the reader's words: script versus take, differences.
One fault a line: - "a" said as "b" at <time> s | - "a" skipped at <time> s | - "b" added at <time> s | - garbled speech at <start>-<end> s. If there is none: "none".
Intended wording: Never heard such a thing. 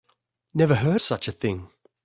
none